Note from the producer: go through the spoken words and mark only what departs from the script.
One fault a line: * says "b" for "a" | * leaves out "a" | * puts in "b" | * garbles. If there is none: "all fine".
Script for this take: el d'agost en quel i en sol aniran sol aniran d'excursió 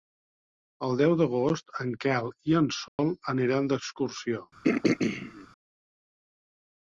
* puts in "deu"
* leaves out "sol aniran"